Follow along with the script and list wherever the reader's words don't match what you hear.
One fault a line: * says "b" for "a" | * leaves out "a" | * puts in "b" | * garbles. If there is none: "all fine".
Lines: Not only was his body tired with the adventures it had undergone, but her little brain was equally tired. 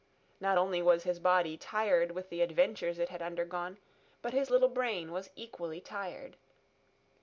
* says "his" for "her"